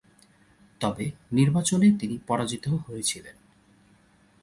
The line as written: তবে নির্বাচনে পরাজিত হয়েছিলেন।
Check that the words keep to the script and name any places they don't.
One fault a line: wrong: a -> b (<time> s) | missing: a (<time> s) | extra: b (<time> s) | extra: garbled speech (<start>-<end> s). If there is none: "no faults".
extra: তিনি (2.0 s)